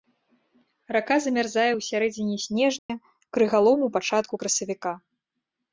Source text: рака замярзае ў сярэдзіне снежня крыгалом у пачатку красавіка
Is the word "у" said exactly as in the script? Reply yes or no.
yes